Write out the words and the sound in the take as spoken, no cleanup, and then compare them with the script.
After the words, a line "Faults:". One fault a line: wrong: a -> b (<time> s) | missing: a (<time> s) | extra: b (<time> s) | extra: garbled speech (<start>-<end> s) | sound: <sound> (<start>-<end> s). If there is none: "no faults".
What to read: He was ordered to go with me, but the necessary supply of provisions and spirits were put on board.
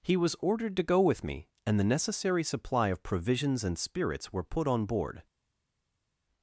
He was ordered to go with me, and the necessary supply of provisions and spirits were put on board.
Faults:
wrong: but -> and (1.6 s)